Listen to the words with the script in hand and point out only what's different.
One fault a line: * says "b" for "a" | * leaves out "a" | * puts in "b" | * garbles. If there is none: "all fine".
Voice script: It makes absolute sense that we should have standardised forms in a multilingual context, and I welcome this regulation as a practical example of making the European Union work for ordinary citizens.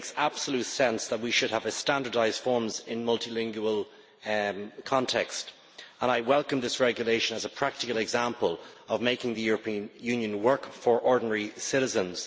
all fine